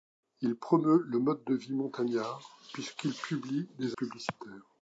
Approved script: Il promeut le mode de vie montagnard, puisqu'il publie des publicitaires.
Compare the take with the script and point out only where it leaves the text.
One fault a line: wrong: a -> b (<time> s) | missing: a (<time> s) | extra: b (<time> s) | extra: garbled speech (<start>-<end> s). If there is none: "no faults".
no faults